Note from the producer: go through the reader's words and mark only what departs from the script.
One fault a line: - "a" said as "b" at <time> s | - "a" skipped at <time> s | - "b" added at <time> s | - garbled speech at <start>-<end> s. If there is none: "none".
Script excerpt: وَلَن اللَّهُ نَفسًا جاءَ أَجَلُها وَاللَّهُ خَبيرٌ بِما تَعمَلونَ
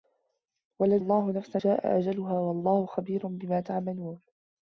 none